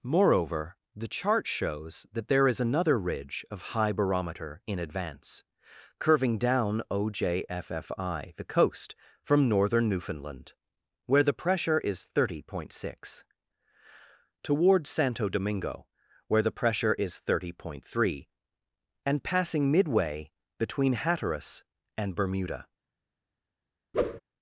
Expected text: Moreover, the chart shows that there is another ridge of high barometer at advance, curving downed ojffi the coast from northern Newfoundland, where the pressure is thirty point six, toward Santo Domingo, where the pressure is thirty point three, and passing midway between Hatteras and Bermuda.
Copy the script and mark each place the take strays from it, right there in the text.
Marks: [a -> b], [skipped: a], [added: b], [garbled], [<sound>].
Moreover, the chart shows that there is another ridge of high barometer [at -> in] advance, curving [downed -> down] ojffi the coast from northern Newfoundland, where the pressure is thirty point six, toward Santo Domingo, where the pressure is thirty point three, and passing midway between Hatteras and Bermuda. [whoosh]